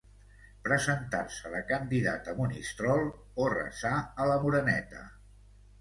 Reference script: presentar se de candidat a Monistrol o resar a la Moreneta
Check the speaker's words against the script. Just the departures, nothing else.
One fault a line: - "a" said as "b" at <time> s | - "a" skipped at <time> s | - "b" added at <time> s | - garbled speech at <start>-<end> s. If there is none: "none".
none